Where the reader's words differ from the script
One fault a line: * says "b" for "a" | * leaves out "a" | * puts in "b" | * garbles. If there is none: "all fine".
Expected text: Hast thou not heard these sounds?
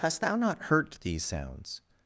* says "hurt" for "heard"